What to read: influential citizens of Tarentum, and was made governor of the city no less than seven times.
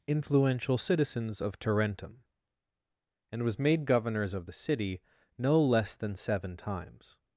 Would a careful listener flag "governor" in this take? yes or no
yes